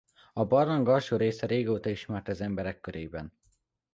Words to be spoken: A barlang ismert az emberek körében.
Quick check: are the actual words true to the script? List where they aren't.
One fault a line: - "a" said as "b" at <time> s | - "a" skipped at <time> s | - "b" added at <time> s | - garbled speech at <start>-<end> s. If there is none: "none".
- "alsó része régóta" added at 0.9 s